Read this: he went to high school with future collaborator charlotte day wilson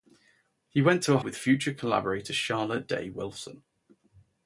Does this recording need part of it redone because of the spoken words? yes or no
yes